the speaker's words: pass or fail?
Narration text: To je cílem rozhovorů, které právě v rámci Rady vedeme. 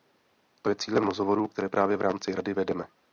pass